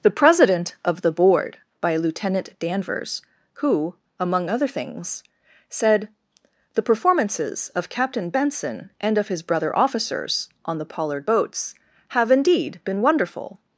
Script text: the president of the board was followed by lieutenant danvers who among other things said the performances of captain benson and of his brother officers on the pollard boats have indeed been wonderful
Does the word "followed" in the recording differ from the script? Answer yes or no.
yes